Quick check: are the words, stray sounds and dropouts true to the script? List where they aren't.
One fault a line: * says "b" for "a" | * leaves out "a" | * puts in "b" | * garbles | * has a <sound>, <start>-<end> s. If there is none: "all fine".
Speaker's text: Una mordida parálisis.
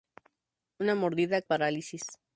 all fine